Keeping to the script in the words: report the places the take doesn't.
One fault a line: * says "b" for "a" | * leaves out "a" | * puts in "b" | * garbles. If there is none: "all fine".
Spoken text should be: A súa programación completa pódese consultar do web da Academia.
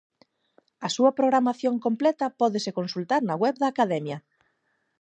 * says "na" for "do"